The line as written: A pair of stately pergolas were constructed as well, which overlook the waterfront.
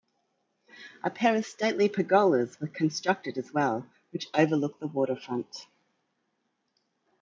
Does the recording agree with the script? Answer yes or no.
yes